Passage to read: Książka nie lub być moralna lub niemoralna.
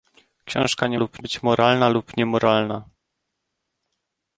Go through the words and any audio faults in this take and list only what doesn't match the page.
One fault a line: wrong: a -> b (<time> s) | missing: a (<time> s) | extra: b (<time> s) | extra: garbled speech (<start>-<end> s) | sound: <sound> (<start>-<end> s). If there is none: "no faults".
no faults